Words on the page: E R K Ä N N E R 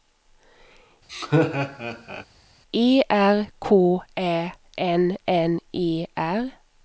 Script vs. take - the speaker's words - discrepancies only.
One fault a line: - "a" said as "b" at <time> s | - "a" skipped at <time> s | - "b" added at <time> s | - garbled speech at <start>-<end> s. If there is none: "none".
none